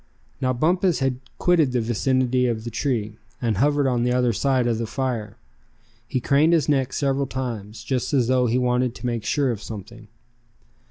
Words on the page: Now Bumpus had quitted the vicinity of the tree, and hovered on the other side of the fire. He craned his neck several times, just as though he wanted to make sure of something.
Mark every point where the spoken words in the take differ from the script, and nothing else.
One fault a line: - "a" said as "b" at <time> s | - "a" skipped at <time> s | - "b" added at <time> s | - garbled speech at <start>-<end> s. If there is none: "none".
none